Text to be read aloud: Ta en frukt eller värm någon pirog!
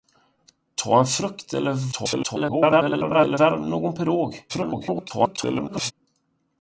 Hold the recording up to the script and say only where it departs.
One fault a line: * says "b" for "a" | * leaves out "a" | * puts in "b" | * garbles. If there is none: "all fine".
* garbles
* garbles